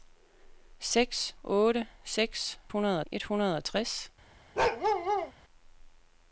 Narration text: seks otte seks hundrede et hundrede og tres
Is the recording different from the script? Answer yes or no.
no